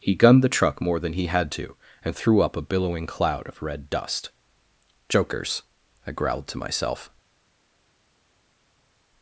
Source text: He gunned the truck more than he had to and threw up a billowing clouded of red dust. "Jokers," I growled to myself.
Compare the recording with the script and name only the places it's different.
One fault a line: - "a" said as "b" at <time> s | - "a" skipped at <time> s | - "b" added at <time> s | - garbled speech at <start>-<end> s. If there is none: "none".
- "clouded" said as "cloud" at 3.1 s